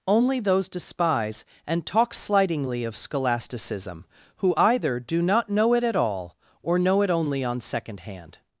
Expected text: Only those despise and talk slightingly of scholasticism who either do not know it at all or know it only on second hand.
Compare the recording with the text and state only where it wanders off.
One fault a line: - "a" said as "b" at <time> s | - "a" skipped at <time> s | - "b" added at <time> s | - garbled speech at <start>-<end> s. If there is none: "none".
none